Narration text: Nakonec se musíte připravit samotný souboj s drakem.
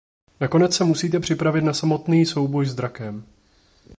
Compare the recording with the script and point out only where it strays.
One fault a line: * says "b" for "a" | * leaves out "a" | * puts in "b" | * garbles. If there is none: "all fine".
* puts in "na"